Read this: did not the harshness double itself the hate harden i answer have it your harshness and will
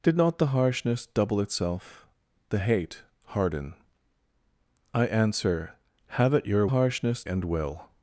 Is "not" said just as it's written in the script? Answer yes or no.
yes